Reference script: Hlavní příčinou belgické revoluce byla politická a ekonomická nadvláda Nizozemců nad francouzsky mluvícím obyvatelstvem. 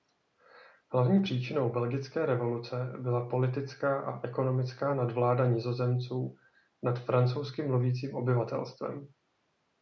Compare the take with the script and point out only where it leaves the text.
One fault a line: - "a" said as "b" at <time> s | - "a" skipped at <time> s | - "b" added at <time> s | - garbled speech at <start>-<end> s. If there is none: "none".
none